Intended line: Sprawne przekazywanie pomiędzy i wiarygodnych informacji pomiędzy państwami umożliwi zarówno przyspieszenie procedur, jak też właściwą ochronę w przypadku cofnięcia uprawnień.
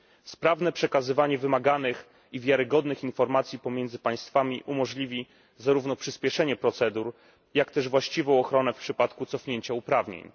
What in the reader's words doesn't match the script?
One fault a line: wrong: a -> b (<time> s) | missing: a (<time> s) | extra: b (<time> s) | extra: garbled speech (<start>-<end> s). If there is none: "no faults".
wrong: pomiędzy -> wymaganych (1.4 s)